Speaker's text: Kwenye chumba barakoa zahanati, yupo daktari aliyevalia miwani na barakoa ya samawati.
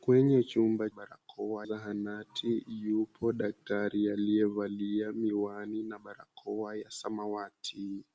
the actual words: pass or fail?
pass